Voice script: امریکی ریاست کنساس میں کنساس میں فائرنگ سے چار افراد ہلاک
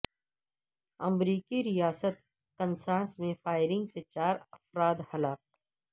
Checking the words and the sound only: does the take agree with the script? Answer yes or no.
no